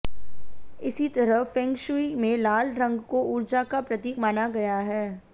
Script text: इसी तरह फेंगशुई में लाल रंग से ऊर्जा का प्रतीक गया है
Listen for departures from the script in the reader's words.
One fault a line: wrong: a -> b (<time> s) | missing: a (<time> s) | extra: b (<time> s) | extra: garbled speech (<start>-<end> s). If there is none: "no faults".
wrong: से -> को (3.1 s)
extra: माना (4.2 s)